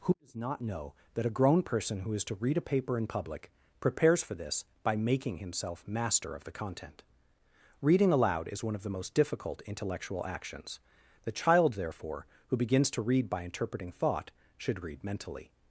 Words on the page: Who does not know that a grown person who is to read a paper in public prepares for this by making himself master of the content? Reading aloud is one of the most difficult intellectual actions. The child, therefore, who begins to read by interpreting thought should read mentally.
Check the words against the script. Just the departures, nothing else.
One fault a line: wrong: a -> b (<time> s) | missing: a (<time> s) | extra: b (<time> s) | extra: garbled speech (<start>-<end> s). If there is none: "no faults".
no faults